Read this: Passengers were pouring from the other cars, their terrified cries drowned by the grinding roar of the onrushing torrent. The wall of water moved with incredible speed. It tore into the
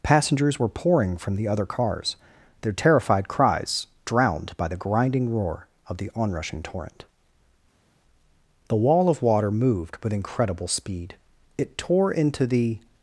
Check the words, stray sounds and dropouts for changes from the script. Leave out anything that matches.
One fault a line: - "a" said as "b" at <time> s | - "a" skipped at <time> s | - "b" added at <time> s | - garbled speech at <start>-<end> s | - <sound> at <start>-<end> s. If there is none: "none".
none